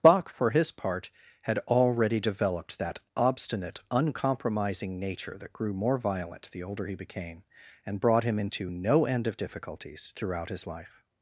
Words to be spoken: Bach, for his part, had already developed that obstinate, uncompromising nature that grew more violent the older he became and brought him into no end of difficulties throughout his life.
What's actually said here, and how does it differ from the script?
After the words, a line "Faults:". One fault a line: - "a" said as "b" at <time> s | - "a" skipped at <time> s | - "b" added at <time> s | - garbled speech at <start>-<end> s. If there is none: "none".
Bach, for his part, had already developed that obstinate, uncompromising nature that grew more violent the older he became and brought him into no end of difficulties throughout his life.
Faults:
none